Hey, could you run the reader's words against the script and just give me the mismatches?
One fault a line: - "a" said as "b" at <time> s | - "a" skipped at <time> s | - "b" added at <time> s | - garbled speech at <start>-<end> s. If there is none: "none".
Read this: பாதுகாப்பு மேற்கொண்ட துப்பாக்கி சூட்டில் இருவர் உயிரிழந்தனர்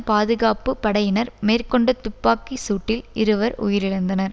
- "படையினர்" added at 0.8 s